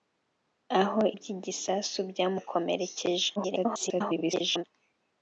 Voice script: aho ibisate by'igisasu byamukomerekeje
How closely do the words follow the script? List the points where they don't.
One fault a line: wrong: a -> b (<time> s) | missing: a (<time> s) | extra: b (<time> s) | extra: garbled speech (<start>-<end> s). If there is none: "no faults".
missing: ibisate (1.0 s)
extra: garbled speech (3.4-4.6 s)